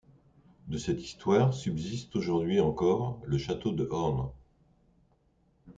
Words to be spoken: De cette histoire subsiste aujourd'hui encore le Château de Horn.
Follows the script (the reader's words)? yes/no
yes